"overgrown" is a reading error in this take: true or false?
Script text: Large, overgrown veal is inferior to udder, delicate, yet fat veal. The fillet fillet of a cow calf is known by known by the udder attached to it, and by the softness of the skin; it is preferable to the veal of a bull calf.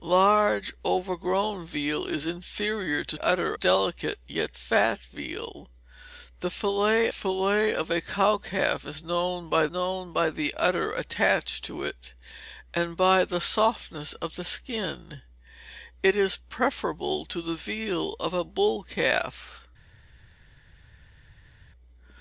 false